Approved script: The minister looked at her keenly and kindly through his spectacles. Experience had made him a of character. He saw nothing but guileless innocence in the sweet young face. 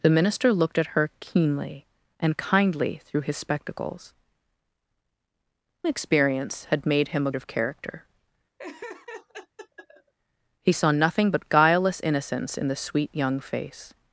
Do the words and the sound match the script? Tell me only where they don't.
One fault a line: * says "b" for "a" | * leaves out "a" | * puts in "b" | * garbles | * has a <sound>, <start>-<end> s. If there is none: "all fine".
* has a laugh, 8.6-10.1 s